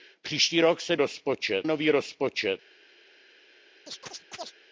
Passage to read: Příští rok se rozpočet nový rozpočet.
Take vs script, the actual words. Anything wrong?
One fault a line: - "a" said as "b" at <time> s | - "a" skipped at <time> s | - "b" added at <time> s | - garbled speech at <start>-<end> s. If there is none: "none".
none